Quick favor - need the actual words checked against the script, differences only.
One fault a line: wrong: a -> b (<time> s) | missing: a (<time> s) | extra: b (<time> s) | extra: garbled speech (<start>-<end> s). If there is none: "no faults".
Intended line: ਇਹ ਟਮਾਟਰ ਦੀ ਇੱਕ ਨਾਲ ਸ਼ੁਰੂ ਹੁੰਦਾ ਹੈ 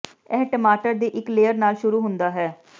extra: ਲੇਅਰ (1.3 s)